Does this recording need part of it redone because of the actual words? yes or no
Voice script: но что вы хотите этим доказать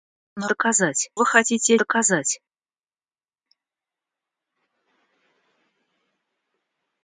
yes